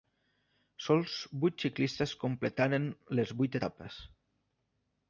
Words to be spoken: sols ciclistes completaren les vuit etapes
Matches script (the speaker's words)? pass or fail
fail